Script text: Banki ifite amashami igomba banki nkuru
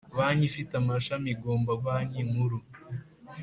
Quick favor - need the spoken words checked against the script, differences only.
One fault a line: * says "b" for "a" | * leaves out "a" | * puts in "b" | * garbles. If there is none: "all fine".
all fine